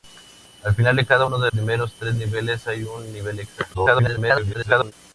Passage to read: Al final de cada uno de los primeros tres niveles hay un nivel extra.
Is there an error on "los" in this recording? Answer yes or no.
yes